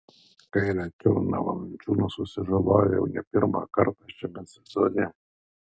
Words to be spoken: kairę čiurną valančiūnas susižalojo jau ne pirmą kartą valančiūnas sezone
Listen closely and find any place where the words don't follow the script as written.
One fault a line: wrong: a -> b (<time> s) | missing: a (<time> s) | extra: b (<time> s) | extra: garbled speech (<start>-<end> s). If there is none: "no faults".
wrong: valančiūnas -> šiame (4.2 s)